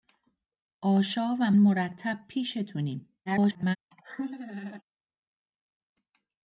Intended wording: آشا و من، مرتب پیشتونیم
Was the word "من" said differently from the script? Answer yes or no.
yes